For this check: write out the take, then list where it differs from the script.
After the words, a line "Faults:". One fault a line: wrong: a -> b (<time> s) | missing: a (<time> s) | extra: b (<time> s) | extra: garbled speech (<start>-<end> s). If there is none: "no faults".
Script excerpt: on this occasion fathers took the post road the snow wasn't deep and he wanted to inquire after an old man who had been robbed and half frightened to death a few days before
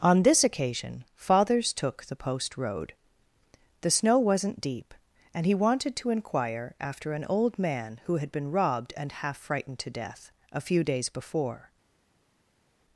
on this occasion fathers took the post road the snow wasn't deep and he wanted to inquire after an old man who had been robbed and half frightened to death a few days before
Faults:
no faults